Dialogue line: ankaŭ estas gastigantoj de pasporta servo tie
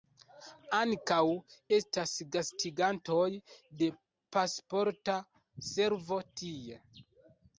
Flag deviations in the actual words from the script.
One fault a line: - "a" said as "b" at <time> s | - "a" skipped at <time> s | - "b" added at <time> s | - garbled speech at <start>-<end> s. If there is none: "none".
none